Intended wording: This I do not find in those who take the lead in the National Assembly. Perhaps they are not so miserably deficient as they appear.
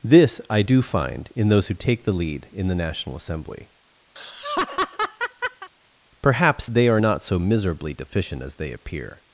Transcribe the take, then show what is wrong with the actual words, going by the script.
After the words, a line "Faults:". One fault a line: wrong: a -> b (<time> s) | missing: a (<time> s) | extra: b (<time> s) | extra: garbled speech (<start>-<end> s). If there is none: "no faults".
This I do find in those who take the lead in the National Assembly. Perhaps they are not so miserably deficient as they appear.
Faults:
missing: not (0.8 s)